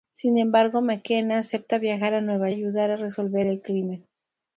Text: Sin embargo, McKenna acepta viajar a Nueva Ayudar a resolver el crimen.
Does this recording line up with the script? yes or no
yes